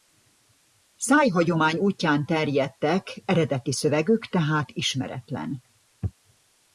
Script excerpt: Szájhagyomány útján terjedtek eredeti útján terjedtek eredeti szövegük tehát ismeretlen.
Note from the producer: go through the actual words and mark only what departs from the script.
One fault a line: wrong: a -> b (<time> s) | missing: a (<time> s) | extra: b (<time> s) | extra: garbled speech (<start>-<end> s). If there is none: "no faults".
missing: útján terjedtek eredeti (3.7 s)